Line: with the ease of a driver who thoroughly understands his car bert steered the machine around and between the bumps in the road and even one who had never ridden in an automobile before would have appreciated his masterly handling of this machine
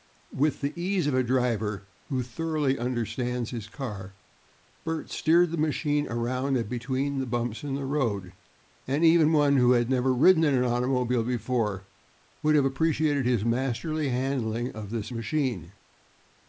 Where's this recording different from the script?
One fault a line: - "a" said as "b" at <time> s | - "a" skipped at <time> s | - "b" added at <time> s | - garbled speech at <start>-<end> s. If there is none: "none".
none